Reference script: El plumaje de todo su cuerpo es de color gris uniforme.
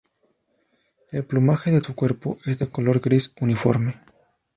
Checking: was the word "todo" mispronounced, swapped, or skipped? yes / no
yes